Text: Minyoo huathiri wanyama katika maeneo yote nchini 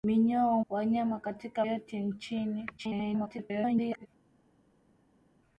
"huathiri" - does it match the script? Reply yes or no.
no